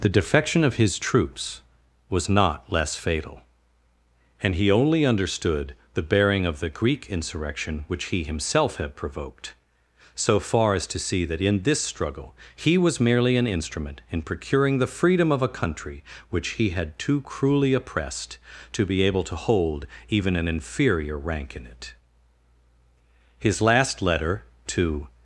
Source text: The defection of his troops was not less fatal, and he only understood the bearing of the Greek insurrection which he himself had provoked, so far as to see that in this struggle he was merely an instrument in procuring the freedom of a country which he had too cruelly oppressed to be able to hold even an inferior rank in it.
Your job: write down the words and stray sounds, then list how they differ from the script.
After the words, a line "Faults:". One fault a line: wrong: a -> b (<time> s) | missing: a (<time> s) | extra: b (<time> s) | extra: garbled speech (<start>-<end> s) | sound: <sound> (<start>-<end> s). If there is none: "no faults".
The defection of his troops was not less fatal, and he only understood the bearing of the Greek insurrection which he himself had provoked, so far as to see that in this struggle he was merely an instrument in procuring the freedom of a country which he had too cruelly oppressed to be able to hold even an inferior rank in it. His last letter to
Faults:
extra: His last letter to (23.4 s)